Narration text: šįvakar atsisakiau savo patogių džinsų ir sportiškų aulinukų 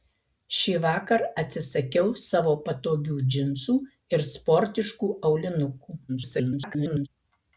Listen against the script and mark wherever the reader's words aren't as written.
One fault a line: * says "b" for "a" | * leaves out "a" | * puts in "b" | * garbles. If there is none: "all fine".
* garbles